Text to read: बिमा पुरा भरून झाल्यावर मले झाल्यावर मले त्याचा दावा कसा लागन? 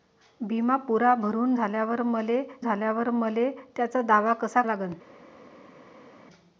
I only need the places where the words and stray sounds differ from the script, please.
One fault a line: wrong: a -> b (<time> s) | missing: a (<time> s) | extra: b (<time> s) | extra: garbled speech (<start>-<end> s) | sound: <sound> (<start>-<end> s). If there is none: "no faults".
no faults